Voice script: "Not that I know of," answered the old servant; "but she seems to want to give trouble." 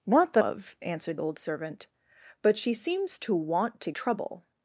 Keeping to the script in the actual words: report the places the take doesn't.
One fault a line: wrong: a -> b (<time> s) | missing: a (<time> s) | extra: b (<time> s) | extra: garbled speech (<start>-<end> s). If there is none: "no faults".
missing: I know (0.4 s)
missing: the (1.2 s)
missing: give (3.9 s)